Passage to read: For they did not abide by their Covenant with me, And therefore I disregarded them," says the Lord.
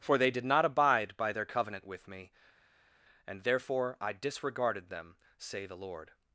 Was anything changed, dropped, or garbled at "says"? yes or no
yes